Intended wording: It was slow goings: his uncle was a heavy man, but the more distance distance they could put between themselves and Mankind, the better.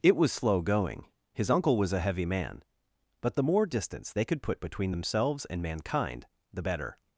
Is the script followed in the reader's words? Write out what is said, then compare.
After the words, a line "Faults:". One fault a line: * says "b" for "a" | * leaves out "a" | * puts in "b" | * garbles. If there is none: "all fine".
It was slow going: his uncle was a heavy man, but the more distance they could put between themselves and Mankind, the better.
Faults:
* says "going" for "goings"
* leaves out "distance"